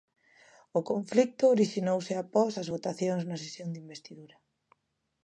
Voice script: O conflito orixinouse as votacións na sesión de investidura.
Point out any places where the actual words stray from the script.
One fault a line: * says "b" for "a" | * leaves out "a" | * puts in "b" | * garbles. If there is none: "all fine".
* puts in "após"